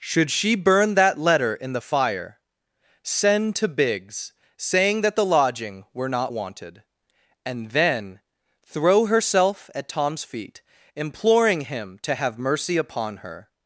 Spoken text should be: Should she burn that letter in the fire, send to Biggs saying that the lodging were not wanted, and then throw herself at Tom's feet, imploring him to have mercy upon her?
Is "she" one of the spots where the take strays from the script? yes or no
no